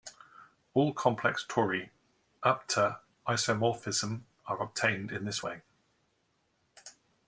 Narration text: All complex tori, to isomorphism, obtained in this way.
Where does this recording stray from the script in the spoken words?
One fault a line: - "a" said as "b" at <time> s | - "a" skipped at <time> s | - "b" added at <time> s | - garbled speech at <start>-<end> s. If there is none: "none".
- "up" added at 2.4 s
- "are" added at 4.5 s